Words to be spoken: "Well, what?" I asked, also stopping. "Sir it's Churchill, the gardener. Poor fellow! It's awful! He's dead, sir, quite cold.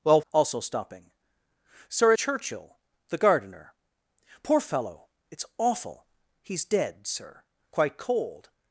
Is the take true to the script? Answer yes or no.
no